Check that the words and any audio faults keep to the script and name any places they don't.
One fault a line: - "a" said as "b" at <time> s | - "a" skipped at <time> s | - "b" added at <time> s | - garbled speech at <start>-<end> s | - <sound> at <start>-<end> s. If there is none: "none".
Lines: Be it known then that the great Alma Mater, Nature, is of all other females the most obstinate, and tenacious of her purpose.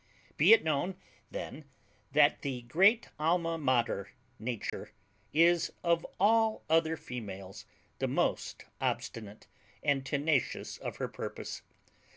- dropout at 4.7-4.7 s